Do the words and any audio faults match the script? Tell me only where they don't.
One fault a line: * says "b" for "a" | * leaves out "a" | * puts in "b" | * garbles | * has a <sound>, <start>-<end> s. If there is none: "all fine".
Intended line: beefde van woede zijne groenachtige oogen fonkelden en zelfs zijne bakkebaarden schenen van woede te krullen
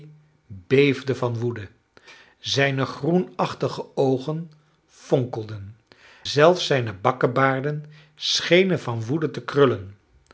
* leaves out "en"